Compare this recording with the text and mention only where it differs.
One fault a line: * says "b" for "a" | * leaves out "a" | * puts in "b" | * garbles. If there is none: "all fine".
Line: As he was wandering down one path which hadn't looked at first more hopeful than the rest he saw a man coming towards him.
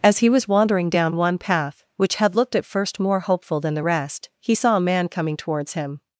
* says "had" for "hadn't"